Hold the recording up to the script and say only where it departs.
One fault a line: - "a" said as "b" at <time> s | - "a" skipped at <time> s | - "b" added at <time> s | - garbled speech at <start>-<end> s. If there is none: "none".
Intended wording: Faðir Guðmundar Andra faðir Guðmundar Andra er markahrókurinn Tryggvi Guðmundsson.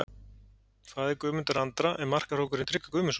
- "faðir Guðmundar Andra" skipped at 1.9 s